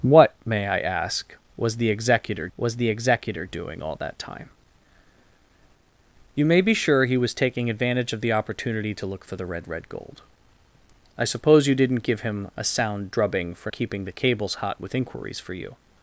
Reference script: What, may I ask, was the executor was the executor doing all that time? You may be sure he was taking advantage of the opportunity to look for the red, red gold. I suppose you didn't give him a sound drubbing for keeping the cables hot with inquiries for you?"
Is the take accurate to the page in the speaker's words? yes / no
yes